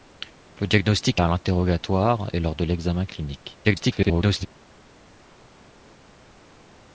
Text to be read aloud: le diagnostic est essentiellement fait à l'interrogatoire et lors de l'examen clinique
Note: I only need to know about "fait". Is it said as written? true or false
false